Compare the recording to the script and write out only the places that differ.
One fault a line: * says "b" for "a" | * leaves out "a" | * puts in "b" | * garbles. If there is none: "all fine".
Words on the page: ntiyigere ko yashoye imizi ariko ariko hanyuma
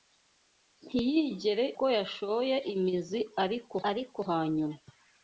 all fine